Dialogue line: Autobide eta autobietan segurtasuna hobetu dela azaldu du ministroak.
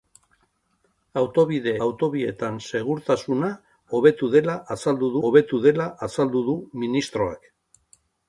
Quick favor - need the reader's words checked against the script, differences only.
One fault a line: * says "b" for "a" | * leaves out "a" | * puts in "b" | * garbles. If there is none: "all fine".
* leaves out "eta"
* puts in "hobetu dela azaldu"